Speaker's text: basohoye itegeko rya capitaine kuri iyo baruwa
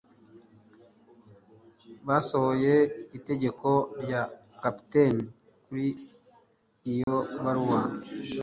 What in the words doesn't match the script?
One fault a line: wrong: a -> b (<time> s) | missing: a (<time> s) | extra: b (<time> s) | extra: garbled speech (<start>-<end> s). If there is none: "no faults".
no faults